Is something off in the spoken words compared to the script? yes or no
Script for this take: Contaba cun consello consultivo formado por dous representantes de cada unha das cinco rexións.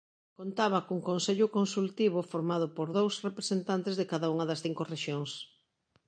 no